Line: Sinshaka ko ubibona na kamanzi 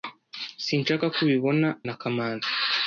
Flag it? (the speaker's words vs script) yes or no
no